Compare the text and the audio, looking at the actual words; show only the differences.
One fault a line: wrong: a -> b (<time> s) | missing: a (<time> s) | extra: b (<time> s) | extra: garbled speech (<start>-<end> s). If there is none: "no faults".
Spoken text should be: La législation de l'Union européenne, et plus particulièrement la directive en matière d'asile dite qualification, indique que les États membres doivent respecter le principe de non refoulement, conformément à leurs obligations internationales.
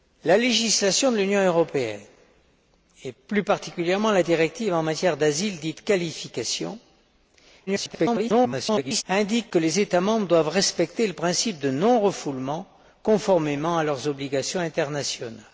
extra: garbled speech (7.7-9.0 s)